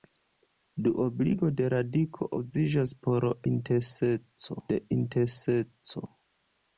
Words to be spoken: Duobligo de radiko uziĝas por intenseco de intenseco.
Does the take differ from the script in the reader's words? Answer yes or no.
no